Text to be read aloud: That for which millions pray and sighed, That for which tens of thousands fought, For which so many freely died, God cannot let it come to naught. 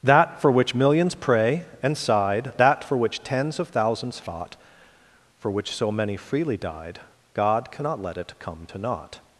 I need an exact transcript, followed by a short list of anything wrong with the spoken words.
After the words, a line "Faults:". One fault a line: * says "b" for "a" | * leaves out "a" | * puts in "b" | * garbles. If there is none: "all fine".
That for which millions pray and sighed, That for which tens of thousands fought, For which so many freely died, God cannot let it come to naught.
Faults:
all fine